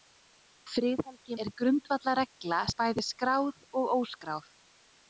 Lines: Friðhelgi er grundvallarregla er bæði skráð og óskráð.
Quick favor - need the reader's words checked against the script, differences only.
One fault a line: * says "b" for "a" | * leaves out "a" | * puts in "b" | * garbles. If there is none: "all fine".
all fine